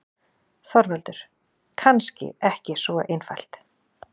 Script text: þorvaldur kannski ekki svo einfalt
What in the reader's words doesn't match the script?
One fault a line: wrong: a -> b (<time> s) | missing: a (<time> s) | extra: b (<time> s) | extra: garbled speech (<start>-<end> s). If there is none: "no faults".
no faults